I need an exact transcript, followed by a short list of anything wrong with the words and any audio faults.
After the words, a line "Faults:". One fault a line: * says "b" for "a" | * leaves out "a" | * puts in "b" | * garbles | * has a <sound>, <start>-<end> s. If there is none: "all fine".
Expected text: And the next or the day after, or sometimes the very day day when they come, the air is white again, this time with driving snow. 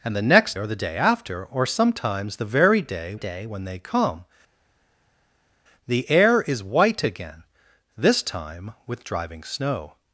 And the next or the day after, or sometimes the very day day when they come, the air is white again, this time with driving snow.
Faults:
all fine